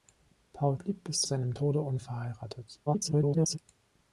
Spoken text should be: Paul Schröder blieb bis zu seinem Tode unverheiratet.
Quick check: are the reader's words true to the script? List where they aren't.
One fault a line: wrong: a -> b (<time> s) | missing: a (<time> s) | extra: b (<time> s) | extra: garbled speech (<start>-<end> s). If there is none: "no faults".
missing: Schröder (0.8 s)
missing: zu (1.2 s)
extra: garbled speech (2.9-3.6 s)